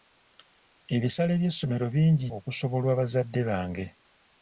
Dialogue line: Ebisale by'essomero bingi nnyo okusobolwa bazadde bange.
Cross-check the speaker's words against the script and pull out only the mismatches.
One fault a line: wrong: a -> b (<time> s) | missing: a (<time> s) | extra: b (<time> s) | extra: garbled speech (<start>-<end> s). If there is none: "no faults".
missing: nnyo (2.3 s)